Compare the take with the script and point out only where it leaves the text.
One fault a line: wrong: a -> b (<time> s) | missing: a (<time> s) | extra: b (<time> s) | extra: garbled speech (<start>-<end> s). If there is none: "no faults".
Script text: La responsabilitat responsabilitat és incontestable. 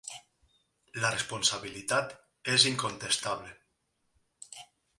missing: responsabilitat (2.1 s)